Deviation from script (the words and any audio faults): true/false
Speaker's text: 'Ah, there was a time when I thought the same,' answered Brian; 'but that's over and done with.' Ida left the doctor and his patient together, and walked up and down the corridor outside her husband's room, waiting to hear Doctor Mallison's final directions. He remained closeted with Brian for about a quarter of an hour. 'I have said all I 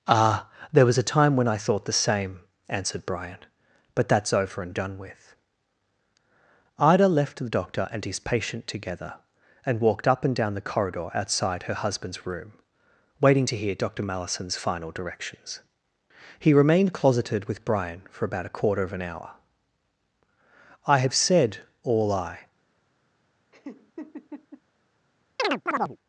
true